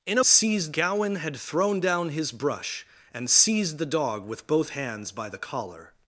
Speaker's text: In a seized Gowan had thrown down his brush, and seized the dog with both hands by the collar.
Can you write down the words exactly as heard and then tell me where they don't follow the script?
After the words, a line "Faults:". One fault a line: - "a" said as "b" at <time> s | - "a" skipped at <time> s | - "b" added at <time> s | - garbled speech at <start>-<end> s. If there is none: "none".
In a seized Gowan had thrown down his brush, and seized the dog with both hands by the collar.
Faults:
none